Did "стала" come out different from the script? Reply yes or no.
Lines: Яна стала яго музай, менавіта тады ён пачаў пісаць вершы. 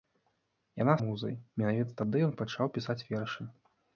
yes